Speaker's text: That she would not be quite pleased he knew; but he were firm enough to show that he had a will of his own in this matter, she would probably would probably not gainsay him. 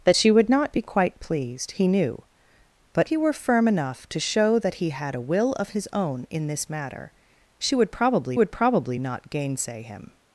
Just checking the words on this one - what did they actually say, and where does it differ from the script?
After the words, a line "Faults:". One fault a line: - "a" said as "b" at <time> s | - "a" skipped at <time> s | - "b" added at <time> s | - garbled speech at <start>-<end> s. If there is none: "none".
That she would not be quite pleased he knew; but he were firm enough to show that he had a will of his own in this matter, she would probably would probably not gainsay him.
Faults:
none